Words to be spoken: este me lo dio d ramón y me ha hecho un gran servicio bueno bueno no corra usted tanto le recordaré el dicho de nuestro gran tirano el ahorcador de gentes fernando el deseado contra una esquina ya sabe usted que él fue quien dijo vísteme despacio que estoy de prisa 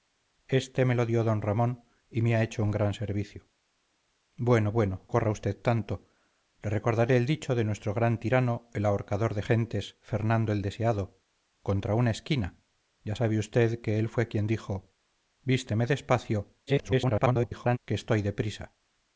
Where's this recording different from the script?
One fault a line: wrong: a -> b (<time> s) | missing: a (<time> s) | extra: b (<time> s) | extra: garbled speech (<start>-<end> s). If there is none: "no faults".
missing: no (5.1 s)
extra: garbled speech (16.7-17.8 s)